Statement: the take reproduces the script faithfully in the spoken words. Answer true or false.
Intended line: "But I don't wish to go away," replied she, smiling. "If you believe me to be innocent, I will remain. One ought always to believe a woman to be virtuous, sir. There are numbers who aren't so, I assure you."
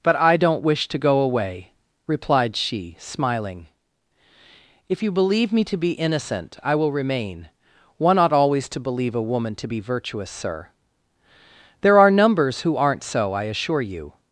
true